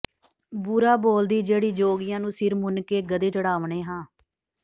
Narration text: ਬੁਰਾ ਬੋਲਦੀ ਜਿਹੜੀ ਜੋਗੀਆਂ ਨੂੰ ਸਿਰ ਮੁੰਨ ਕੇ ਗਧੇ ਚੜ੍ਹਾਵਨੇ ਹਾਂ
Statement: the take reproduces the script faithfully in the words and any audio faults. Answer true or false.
true